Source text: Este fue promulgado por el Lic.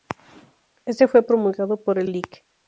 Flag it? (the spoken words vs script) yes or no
no